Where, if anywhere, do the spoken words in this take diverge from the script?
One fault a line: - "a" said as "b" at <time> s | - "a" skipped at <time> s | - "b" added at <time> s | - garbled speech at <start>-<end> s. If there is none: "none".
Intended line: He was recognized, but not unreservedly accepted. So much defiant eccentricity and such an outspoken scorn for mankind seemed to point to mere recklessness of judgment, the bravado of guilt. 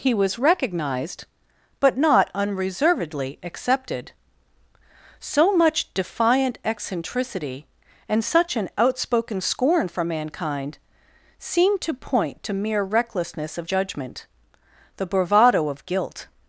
none